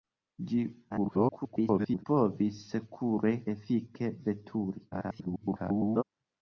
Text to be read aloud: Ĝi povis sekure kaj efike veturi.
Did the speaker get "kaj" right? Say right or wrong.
wrong